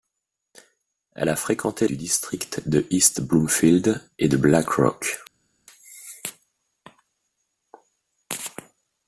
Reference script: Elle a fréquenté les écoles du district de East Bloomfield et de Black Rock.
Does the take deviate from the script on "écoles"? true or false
true